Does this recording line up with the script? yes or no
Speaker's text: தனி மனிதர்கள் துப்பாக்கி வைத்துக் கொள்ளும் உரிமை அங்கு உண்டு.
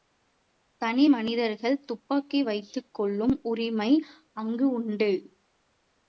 yes